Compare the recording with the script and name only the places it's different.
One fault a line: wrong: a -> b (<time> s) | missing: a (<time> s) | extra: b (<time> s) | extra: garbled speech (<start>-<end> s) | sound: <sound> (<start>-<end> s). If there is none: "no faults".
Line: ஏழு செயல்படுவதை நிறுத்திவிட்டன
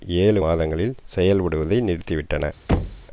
extra: மாதங்களில் (0.4 s)
sound: thud (2.7-3.1 s)